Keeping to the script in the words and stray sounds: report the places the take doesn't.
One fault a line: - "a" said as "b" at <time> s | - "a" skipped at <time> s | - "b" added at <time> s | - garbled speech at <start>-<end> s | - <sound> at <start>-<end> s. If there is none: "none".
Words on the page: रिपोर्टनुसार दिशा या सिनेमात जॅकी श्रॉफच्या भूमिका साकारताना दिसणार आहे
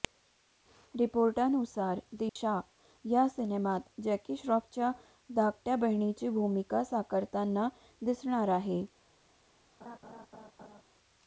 - dropout at 2.3-2.4 s
- "धाकट्या बहिणीची" added at 5.3 s
- laugh at 9.8-10.8 s